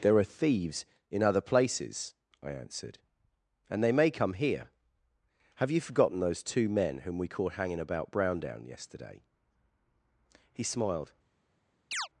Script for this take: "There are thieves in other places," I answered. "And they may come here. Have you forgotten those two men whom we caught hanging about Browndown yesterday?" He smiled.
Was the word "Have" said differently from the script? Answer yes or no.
no